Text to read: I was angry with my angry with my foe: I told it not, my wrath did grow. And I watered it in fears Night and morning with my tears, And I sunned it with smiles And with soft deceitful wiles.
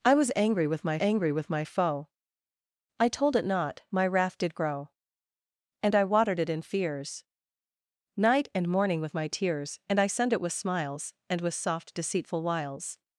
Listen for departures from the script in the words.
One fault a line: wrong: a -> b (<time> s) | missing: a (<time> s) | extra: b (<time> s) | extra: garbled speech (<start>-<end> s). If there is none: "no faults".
no faults